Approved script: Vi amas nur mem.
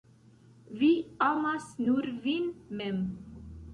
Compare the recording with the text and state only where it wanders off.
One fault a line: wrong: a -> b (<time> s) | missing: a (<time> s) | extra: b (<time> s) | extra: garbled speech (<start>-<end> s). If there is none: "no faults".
extra: vin (2.3 s)